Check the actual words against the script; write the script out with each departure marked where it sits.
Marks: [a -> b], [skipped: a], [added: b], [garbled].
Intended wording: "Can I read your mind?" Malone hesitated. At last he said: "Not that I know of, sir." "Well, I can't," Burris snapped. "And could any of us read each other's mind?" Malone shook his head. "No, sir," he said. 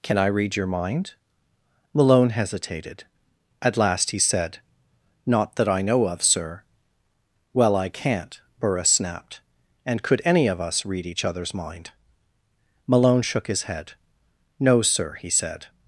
"Can I read your mind?" Malone hesitated. At last he said: "Not that I know of, sir." "Well, I can't," Burris snapped. "And could any of us read each other's mind?" Malone shook his head. "No, sir," he said.